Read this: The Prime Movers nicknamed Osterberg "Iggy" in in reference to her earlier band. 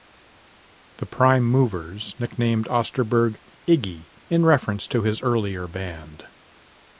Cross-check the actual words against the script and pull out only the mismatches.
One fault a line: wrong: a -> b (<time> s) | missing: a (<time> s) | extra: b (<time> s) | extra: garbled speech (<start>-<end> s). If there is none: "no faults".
missing: in (4.5 s)
wrong: her -> his (5.0 s)